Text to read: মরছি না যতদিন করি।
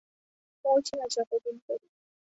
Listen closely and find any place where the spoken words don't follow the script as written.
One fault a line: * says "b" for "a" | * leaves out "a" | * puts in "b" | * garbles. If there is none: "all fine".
all fine